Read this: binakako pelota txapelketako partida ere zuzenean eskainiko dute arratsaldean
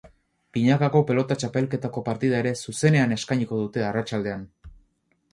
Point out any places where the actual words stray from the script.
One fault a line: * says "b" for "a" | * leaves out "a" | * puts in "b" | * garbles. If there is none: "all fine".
all fine